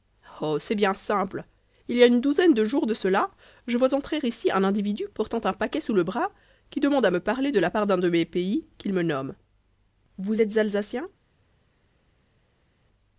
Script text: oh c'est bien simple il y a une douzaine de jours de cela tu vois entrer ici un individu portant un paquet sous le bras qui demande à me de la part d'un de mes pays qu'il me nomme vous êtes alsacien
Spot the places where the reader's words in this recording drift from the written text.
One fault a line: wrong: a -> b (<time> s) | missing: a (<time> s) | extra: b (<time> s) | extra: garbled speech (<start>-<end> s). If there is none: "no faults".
wrong: tu -> je (3.7 s)
extra: parler (7.2 s)